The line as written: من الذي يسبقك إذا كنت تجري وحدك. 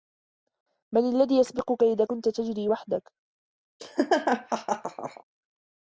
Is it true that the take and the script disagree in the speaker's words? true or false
false